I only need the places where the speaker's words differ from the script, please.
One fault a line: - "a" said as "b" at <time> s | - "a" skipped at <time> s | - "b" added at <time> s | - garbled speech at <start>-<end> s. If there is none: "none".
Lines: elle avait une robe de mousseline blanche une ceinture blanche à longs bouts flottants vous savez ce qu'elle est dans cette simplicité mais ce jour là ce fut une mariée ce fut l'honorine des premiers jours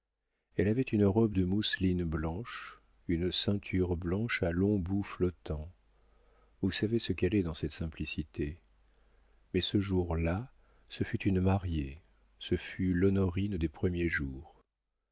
none